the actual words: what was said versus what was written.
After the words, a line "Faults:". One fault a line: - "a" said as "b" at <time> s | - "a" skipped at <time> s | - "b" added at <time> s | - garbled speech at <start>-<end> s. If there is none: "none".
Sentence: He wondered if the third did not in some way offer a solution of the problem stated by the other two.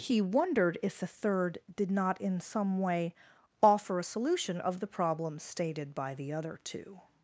He wondered if the third did not in some way offer a solution of the problem stated by the other two.
Faults:
none